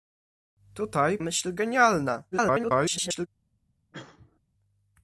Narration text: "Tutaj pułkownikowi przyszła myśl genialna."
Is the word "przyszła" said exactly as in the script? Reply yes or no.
no